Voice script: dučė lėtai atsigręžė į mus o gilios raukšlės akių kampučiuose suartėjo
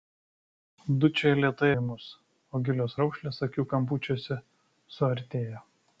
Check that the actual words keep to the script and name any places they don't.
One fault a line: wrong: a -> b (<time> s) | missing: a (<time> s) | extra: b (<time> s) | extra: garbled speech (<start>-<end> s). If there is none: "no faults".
missing: atsigręžė (1.7 s)